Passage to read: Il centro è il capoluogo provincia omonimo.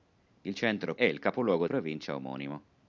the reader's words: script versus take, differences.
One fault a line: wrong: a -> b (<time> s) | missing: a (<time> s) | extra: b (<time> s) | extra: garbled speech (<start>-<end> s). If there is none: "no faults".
no faults